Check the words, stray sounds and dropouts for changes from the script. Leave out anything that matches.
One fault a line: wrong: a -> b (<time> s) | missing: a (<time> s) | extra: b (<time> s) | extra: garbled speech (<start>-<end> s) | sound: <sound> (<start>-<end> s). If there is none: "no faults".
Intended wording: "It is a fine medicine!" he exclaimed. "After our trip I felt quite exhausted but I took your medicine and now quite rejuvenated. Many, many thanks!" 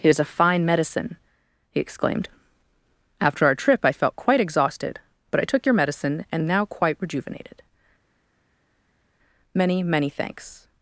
no faults